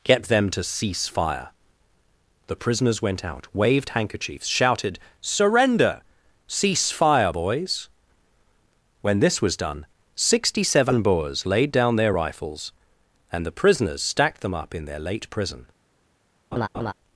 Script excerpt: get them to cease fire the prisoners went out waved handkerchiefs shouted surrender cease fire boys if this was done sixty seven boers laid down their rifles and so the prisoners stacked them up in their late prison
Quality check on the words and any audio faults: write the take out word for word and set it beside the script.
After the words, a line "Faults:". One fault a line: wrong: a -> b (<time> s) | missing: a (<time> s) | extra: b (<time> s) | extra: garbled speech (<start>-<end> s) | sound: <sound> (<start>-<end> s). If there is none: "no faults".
get them to cease fire the prisoners went out waved handkerchiefs shouted surrender cease fire boys when this was done sixty seven boers laid down their rifles and the prisoners stacked them up in their late prison
Faults:
wrong: if -> when (9.0 s)
missing: so (13.5 s)
sound: laugh (16.5-16.9 s)